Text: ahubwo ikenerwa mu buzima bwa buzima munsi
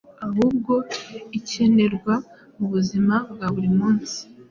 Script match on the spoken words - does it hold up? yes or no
no